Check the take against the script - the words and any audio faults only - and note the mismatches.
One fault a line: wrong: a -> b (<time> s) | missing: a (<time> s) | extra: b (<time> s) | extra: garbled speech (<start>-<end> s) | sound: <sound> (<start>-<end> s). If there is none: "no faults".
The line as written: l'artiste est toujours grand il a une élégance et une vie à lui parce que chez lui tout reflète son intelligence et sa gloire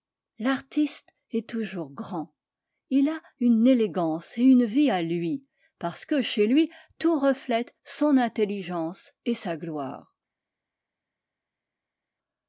no faults